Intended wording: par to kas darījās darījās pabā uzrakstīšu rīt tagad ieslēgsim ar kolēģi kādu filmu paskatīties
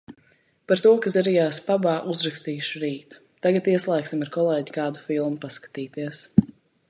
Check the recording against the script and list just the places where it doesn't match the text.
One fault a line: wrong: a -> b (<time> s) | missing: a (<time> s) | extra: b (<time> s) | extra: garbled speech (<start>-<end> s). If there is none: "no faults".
missing: darījās (1.6 s)